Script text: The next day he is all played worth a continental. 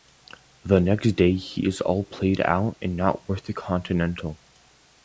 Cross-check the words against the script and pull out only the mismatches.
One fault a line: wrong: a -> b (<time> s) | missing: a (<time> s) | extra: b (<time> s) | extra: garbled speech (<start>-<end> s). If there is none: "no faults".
extra: out and not (2.4 s)